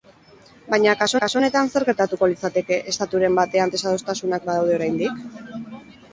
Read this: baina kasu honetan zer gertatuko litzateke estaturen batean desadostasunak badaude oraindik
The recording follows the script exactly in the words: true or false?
false